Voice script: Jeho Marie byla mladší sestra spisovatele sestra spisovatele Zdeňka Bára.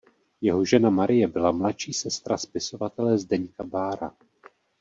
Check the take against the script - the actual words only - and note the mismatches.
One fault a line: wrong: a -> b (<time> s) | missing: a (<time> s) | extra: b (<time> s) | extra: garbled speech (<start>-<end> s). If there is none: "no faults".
extra: žena (0.7 s)
missing: sestra spisovatele (3.2 s)